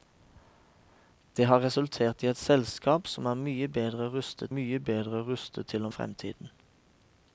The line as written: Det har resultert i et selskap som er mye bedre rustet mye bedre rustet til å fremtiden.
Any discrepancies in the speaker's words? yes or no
no